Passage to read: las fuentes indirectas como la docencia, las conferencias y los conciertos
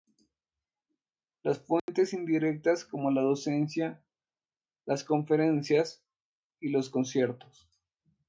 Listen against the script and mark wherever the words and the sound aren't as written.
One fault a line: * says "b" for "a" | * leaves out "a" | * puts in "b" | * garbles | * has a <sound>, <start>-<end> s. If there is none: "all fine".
* has a dropout, 1.8-1.9 s